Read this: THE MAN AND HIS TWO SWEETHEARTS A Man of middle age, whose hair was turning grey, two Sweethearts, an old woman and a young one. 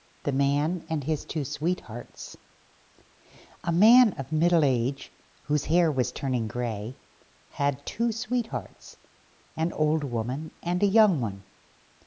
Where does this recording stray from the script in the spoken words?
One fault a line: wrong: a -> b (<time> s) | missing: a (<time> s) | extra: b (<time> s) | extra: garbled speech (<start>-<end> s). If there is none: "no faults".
extra: had (7.5 s)